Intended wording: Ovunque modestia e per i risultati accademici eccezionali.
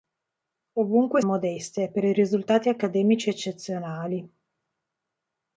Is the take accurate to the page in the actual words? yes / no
yes